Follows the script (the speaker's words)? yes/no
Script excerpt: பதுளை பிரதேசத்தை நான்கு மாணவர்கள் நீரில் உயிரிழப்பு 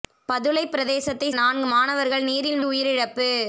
yes